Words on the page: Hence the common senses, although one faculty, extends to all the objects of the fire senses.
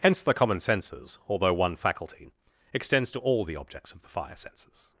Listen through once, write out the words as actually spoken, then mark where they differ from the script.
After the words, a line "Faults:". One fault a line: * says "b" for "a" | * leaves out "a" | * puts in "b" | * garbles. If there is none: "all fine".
Hence the common senses, although one faculty, extends to all the objects of the fire senses.
Faults:
all fine